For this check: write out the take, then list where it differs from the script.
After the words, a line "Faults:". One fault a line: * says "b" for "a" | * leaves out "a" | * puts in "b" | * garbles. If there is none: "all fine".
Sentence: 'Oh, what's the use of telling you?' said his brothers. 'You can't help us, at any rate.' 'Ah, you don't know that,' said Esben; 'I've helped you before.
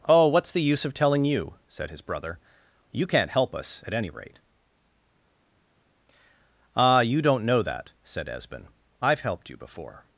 'Oh, what's the use of telling you?' said his brother. 'You can't help us, at any rate.' 'Ah, you don't know that,' said Esben; 'I've helped you before.
Faults:
* says "brother" for "brothers"